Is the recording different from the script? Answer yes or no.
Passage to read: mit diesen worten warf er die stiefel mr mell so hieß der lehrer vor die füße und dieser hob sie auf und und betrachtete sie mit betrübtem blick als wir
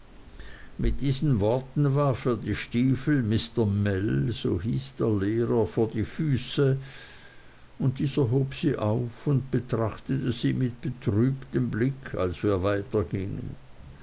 yes